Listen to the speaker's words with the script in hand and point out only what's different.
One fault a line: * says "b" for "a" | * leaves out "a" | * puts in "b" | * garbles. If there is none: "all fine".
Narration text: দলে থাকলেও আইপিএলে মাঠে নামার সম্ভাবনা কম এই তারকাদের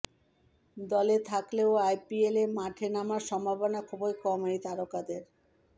* puts in "খুবই"